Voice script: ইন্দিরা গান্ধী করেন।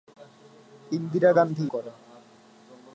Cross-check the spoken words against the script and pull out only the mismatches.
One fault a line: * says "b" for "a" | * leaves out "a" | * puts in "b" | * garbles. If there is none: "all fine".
all fine